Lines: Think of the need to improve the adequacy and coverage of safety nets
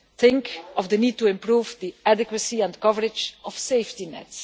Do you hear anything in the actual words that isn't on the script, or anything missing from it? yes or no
no